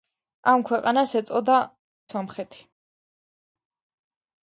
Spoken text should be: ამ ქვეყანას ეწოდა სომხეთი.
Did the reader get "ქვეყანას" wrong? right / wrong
right